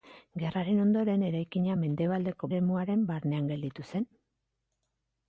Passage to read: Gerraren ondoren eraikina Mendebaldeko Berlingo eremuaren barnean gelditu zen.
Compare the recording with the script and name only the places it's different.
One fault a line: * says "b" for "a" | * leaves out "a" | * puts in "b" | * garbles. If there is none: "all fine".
* leaves out "Berlingo"